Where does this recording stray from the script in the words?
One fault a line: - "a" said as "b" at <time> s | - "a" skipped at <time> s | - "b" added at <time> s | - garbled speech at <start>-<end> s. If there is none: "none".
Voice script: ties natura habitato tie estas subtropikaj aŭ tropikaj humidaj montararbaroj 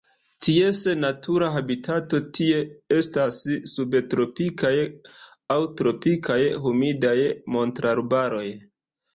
none